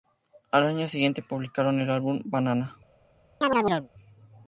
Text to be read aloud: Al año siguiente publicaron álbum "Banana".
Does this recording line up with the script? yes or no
no